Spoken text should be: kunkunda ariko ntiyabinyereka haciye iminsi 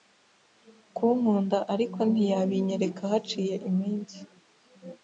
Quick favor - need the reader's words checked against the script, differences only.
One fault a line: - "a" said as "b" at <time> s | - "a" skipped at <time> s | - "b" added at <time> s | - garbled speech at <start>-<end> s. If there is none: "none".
none